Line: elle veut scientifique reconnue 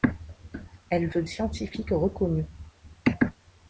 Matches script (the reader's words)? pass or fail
pass